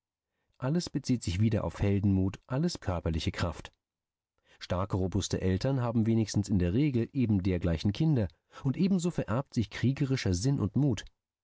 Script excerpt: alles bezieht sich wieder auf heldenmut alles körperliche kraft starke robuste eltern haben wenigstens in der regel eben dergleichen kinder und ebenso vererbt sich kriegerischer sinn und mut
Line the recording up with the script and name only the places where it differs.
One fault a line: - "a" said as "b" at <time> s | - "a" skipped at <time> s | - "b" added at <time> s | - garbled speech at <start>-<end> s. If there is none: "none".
none